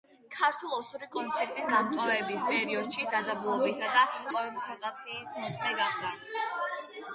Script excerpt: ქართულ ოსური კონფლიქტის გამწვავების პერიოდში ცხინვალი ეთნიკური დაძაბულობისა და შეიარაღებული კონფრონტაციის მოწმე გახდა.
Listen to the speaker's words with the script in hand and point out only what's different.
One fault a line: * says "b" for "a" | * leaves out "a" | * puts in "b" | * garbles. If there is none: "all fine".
* leaves out "ცხინვალი ეთნიკური"
* leaves out "შეიარაღებული"